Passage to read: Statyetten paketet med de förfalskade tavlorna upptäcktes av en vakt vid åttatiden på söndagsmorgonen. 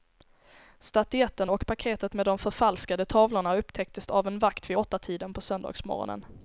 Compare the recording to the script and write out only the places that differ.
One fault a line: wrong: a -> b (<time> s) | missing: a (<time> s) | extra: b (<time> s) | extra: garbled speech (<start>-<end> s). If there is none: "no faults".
extra: och (1.5 s)